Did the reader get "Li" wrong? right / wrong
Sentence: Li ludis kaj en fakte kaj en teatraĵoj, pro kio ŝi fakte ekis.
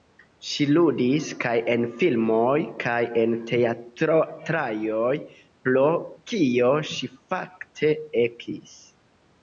wrong